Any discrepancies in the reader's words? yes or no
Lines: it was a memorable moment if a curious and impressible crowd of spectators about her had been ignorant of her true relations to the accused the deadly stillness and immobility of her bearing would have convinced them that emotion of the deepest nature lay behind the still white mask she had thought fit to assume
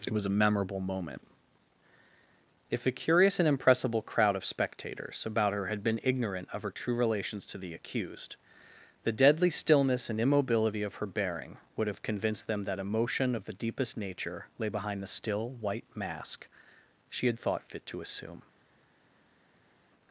no